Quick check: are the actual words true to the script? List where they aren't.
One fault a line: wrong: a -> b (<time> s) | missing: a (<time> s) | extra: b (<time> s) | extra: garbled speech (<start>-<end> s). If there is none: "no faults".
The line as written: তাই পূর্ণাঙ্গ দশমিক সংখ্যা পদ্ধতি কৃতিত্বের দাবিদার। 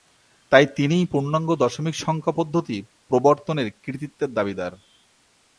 extra: তিনিই (0.8 s)
extra: প্রবর্তনের (3.1 s)